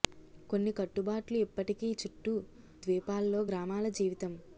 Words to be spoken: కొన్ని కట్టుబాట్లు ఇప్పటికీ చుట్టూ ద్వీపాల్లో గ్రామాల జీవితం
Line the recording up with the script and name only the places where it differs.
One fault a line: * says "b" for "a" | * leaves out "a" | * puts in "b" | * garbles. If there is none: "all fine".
all fine